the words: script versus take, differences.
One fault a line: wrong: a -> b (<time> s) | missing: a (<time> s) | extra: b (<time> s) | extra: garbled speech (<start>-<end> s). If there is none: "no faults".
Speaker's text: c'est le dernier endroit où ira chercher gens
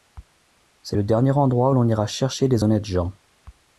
extra: l'on (1.7 s)
extra: des honnêtes (2.5 s)